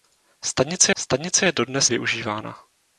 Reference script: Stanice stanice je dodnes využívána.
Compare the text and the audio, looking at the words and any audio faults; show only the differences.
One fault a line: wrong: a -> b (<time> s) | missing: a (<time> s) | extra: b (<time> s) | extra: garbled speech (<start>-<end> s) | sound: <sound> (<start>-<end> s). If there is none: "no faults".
no faults